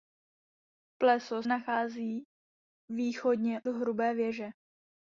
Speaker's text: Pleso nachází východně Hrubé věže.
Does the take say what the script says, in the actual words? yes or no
yes